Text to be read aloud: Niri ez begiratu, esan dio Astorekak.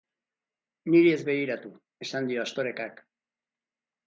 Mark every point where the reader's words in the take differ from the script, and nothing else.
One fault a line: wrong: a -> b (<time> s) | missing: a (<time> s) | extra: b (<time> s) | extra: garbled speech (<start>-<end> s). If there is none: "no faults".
no faults